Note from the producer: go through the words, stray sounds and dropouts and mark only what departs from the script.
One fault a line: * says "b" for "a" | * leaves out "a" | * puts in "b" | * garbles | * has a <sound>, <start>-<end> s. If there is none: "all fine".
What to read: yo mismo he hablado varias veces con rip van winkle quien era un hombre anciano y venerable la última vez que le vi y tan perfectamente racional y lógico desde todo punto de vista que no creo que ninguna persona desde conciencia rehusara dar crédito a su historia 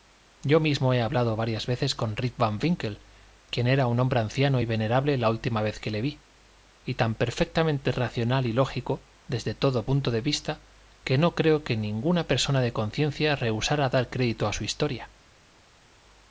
* says "de" for "desde"